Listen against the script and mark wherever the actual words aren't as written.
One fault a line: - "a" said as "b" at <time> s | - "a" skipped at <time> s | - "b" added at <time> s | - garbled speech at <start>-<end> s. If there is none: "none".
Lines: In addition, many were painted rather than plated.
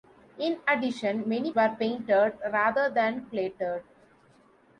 none